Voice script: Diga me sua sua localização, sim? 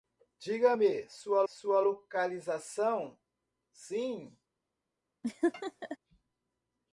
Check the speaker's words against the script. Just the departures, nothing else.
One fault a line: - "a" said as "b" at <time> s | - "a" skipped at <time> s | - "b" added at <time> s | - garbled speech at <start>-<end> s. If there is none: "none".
none